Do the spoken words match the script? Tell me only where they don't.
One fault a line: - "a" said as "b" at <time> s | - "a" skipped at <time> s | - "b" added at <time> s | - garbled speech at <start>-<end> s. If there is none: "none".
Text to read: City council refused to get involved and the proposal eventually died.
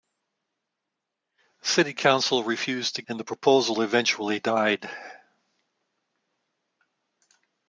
- "get involved" skipped at 3.0 s